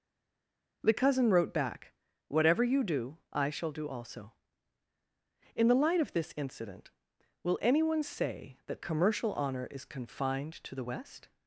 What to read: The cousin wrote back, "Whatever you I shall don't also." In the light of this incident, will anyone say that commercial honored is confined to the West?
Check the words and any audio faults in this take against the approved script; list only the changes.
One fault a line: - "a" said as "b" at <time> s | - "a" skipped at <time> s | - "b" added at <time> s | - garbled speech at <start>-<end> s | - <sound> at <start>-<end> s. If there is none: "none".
- "do" added at 2.8 s
- "don't" said as "do" at 3.7 s
- "honored" said as "honor" at 9.3 s